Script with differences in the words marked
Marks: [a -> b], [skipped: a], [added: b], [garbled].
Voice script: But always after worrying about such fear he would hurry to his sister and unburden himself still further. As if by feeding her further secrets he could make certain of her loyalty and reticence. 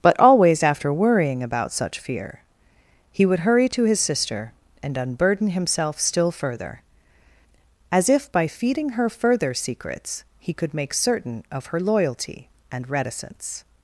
But always after worrying about such fear he would hurry to his sister and unburden himself still further. As if by feeding her further secrets he could make certain of her loyalty and reticence.